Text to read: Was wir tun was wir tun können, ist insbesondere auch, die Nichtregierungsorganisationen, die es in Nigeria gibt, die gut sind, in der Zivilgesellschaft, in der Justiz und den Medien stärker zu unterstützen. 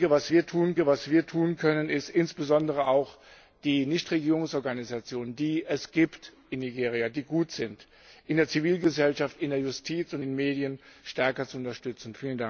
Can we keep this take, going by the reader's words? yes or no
yes